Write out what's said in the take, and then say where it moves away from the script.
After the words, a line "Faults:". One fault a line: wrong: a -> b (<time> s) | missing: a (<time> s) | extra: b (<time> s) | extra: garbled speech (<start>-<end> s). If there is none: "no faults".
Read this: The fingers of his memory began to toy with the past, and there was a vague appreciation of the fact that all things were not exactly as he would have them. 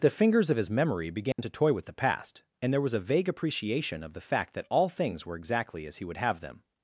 The fingers of his memory began to toy with the past, and there was a vague appreciation of the fact that all things were exactly as he would have them.
Faults:
missing: not (5.4 s)